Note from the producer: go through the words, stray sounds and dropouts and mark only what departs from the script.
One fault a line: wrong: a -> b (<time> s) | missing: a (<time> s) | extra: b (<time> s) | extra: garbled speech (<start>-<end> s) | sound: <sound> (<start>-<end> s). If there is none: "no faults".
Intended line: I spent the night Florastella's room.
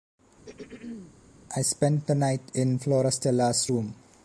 sound: throat clearing (0.4-1.1 s)
extra: in (2.5 s)